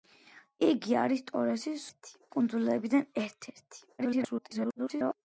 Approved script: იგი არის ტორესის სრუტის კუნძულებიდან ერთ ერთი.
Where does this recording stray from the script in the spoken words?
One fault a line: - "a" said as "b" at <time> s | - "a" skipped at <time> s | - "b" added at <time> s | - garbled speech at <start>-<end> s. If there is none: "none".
- "სრუტის" said as "ერთი" at 1.9 s
- garbled speech at 4.0-5.2 s